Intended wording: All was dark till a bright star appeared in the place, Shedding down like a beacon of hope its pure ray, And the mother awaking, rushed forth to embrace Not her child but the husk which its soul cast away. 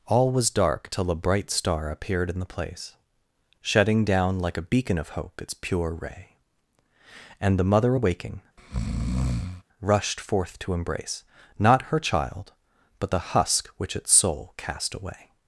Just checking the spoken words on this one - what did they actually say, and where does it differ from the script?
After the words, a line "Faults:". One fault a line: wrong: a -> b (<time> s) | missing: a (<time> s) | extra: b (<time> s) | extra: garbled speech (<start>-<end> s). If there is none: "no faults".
All was dark till a bright star appeared in the place, Shedding down like a beacon of hope its pure ray, And the mother awaking, rushed forth to embrace Not her child but the husk which its soul cast away.
Faults:
no faults